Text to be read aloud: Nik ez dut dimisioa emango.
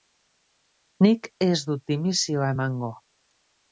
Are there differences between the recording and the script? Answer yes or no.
no